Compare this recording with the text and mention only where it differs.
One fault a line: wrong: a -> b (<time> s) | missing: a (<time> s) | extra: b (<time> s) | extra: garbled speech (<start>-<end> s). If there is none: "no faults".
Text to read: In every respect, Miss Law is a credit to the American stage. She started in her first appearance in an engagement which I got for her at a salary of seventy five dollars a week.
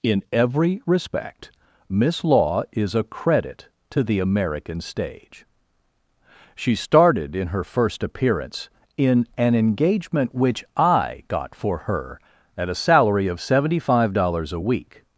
no faults